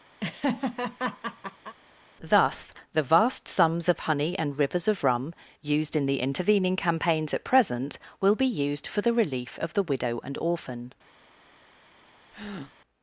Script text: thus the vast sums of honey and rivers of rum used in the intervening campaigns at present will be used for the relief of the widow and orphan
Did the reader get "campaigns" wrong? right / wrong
right